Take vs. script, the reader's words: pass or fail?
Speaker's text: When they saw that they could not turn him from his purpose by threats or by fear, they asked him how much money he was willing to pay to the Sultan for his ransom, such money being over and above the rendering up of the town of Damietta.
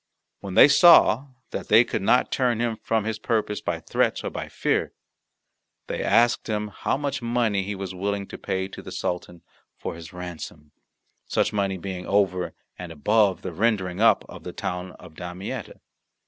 pass